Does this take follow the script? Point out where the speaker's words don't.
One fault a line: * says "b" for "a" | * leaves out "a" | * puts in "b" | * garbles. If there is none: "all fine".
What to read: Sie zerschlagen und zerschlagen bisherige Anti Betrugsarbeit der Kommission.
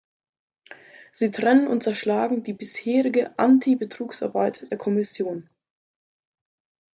* says "trennen" for "zerschlagen"
* puts in "die"